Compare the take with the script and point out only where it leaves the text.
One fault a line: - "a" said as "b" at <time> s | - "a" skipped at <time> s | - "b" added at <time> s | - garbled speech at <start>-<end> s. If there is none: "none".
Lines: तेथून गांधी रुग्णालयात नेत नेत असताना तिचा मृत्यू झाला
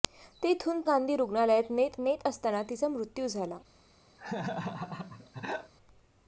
none